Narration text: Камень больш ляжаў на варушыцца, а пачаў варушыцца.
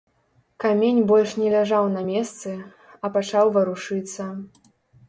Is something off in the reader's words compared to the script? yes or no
yes